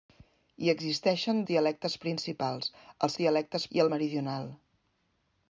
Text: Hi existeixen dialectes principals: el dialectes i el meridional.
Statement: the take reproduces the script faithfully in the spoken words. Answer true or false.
true